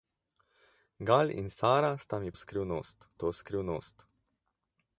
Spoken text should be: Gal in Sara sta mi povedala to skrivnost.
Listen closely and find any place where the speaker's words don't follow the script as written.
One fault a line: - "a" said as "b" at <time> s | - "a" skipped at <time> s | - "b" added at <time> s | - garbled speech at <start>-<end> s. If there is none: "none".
- "povedala" said as "skrivnost" at 2.4 s